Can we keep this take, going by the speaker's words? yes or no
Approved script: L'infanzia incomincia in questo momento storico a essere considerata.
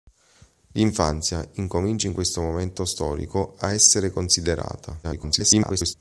no